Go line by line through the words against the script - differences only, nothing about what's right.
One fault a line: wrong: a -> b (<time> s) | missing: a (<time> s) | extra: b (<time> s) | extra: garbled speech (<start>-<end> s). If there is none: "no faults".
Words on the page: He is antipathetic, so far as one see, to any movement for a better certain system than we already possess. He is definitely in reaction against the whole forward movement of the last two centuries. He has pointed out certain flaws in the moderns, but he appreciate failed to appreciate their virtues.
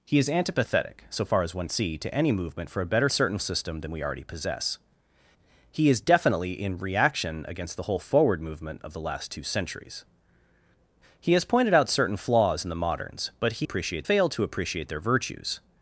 no faults